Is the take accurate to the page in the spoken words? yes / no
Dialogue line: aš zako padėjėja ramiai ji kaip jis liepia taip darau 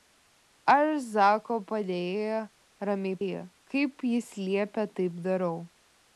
yes